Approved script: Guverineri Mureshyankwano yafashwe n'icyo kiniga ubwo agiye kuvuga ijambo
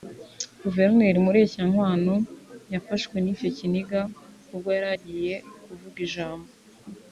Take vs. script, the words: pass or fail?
fail